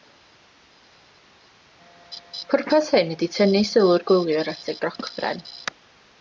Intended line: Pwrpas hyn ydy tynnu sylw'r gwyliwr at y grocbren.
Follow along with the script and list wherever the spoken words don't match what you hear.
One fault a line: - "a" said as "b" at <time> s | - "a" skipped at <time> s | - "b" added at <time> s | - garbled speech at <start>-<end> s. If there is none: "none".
none